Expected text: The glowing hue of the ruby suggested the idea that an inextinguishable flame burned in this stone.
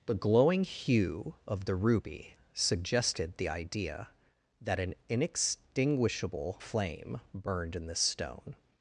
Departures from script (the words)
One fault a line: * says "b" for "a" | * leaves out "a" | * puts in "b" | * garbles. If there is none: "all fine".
all fine